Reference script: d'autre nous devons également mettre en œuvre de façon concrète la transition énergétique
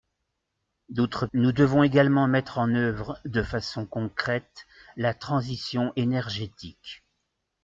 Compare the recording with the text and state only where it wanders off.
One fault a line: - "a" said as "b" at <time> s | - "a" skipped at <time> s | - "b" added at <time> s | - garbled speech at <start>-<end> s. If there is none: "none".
none